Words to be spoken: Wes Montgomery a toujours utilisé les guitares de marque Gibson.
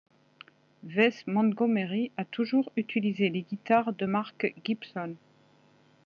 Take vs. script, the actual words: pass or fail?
pass